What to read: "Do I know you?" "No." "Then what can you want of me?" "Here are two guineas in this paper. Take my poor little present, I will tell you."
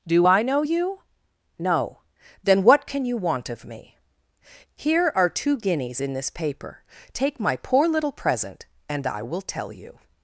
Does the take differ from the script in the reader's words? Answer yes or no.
yes